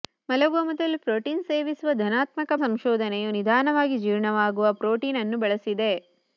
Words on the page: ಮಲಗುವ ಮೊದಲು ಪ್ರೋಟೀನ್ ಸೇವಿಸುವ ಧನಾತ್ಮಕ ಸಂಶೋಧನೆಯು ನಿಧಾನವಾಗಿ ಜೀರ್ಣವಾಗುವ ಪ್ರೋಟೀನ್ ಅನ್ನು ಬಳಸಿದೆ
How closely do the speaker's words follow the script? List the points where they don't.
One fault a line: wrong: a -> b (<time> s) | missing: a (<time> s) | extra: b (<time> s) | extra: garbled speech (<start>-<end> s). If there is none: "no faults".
no faults